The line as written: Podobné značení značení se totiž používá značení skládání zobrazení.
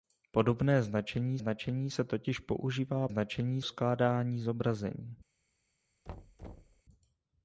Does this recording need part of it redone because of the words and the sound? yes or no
yes